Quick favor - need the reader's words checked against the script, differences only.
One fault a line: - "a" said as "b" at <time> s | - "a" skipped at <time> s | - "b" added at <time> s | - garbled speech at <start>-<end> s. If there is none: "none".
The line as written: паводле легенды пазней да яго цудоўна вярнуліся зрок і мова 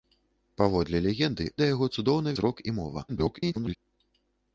- "пазней" skipped at 1.4 s
- "вярнуліся" skipped at 2.4 s
- garbled speech at 3.1-3.8 s